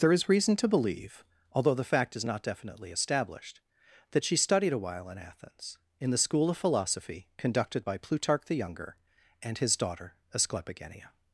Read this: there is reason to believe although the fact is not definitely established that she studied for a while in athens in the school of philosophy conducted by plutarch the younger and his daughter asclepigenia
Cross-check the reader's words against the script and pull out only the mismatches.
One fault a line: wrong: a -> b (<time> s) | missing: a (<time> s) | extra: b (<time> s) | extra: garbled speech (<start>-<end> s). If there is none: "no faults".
missing: for (4.7 s)